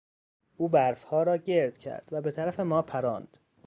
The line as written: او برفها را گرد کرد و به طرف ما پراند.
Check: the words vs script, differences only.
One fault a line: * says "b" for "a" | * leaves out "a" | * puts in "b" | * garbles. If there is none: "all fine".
all fine